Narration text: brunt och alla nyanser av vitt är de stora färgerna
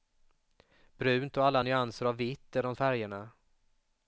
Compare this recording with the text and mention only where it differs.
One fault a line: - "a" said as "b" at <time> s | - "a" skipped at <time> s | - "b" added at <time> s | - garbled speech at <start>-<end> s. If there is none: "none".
- "stora" skipped at 2.7 s